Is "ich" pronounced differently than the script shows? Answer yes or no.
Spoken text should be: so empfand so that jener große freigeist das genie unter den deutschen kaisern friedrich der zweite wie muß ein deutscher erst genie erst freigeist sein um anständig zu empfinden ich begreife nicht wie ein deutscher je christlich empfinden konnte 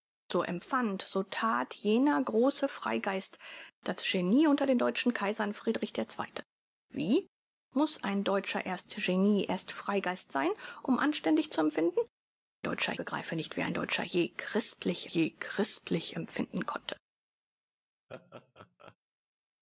yes